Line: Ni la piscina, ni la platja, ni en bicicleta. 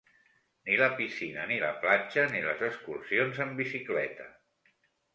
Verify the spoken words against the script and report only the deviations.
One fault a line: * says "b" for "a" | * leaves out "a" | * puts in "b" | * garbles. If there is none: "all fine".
* puts in "les excursions"